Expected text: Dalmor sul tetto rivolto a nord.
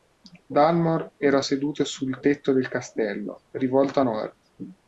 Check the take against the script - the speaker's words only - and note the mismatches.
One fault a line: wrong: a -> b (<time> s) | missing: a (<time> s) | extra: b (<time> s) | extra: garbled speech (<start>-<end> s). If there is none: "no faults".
extra: era seduto (1.1 s)
extra: del castello (2.5 s)